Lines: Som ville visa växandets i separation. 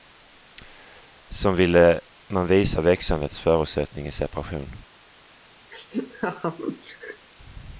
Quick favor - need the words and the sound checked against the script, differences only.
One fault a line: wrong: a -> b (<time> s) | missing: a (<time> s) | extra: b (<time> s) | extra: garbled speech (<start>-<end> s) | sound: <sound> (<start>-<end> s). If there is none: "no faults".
extra: man (2.3 s)
extra: förutsättning (3.4 s)
sound: laugh (5.7-7.3 s)